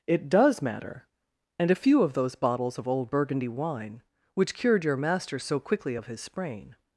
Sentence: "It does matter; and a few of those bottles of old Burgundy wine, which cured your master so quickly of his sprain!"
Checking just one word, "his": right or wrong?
right